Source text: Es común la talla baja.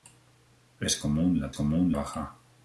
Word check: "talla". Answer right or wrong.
wrong